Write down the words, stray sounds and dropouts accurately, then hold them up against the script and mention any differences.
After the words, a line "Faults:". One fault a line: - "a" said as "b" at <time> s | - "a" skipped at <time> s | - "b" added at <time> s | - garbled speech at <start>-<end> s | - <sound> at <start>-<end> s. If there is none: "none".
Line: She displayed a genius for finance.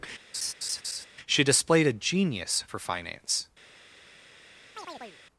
She displayed a genius for finance.
Faults:
- laugh at 0.3-1.1 s
- chirp at 4.7-5.2 s